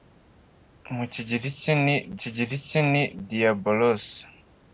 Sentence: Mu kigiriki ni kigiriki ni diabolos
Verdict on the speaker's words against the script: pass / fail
pass